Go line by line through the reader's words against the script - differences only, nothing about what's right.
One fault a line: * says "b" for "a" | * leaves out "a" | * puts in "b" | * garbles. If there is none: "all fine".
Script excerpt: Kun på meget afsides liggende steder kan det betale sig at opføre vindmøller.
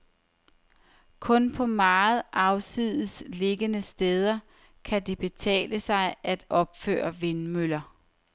all fine